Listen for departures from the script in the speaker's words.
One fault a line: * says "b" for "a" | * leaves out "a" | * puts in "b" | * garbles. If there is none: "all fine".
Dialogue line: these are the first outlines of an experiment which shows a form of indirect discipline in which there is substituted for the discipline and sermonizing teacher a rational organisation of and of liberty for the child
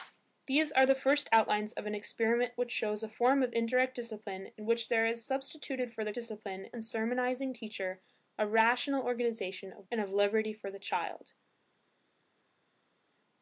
all fine